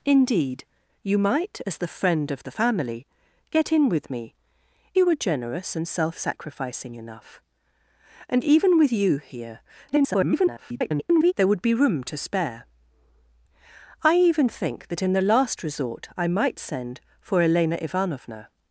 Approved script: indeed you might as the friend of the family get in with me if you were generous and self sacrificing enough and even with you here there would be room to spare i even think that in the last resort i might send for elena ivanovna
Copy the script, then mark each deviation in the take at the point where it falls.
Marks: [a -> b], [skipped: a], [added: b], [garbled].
indeed you might as the friend of the family get in with me [skipped: if] you were generous and self sacrificing enough and even with you here [garbled] there would be room to spare i even think that in the last resort i might send for elena ivanovna